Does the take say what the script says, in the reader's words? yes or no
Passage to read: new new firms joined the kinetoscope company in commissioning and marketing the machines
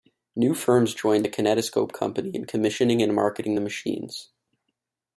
no